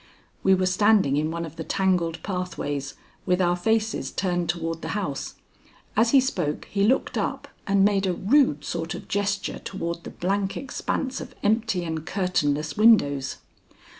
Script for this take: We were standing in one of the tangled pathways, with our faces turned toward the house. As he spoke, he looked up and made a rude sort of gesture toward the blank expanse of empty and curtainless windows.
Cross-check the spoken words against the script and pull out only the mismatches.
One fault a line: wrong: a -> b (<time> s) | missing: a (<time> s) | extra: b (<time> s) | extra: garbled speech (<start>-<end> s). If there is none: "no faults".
no faults